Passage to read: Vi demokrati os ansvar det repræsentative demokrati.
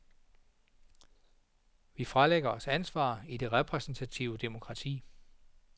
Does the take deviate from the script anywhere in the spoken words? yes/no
yes